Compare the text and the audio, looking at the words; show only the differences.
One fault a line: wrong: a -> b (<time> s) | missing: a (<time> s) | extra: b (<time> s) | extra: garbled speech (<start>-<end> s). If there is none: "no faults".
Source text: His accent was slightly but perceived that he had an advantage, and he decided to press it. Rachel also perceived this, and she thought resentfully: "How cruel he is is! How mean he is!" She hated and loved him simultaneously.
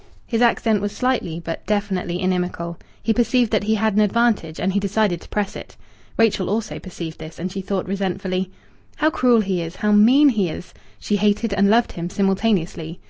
extra: definitely inimical He (1.7 s)
missing: is (9.8 s)